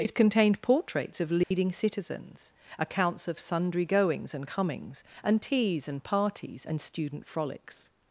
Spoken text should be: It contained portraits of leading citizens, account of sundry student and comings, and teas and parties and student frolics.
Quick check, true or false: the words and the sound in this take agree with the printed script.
false